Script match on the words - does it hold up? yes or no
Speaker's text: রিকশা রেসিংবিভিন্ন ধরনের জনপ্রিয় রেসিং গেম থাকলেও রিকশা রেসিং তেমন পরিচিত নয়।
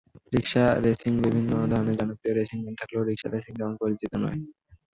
yes